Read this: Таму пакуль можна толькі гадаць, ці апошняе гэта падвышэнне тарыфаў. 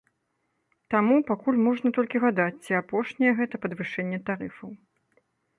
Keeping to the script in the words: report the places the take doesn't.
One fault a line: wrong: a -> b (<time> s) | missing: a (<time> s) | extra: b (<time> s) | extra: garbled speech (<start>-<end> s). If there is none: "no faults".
no faults